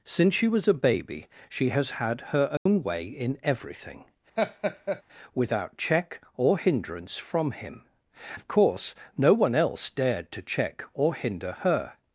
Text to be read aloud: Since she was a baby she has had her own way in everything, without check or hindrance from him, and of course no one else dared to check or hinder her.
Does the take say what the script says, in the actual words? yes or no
no